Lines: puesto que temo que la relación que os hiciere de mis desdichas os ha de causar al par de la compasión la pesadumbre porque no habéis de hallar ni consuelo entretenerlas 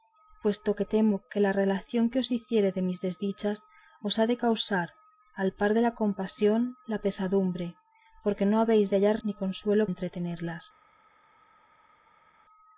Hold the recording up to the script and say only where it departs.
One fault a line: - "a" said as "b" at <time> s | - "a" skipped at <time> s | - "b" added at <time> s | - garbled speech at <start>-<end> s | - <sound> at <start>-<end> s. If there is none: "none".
none